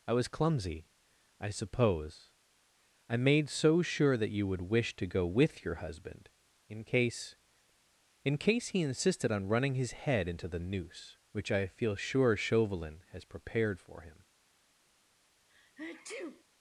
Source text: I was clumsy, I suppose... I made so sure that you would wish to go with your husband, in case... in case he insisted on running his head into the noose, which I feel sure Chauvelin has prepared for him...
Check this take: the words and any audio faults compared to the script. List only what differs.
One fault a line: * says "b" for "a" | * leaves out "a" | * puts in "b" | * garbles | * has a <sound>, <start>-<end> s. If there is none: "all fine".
* has a sneeze, 15.5-16.4 s